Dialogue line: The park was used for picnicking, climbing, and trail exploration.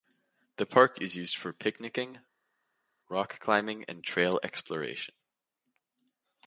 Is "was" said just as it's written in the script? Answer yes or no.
no